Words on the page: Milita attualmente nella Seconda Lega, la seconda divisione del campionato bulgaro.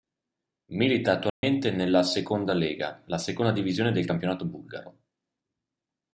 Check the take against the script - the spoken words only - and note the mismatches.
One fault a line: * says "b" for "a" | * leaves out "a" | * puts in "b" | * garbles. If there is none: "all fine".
all fine